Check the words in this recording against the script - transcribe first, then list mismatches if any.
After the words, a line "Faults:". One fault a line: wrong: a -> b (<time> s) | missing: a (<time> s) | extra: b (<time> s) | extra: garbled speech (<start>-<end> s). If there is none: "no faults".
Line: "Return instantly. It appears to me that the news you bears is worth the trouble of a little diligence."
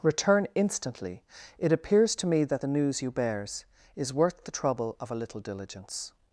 "Return instantly. It appears to me that the news you bears is worth the trouble of a little diligence."
Faults:
no faults